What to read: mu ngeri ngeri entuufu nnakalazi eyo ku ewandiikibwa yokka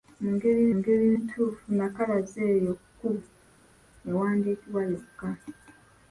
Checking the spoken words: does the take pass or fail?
pass